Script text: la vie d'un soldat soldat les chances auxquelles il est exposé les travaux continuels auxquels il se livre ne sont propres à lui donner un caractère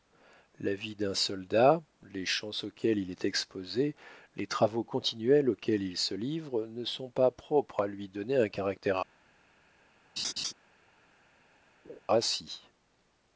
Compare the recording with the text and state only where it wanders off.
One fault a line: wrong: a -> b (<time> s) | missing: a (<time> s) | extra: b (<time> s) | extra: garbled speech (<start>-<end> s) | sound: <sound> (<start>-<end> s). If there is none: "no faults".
missing: soldat (1.8 s)
extra: pas (7.1 s)
sound: laugh (10.2-10.5 s)
sound: laugh (11.8-12.0 s)